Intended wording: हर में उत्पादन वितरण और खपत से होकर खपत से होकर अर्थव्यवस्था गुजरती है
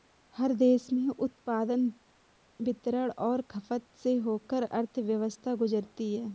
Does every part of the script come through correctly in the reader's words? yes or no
no